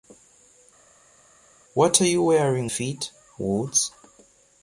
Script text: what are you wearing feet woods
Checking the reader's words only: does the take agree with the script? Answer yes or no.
yes